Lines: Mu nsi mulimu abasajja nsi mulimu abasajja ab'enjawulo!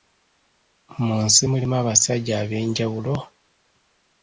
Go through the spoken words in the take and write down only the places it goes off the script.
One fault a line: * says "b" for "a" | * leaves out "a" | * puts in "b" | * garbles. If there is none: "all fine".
* leaves out "nsi mulimu abasajja"